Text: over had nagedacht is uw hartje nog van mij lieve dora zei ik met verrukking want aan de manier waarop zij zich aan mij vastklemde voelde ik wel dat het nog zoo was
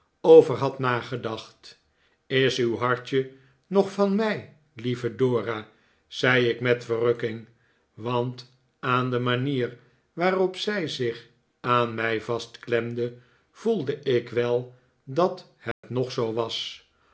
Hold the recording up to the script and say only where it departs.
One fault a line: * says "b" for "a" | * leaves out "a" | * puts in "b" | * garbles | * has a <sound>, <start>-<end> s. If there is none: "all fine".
* has a dropout, 15.7-15.8 s